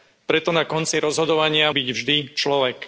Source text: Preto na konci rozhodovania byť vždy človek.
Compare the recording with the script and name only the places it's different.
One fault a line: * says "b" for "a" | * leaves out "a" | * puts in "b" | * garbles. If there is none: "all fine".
all fine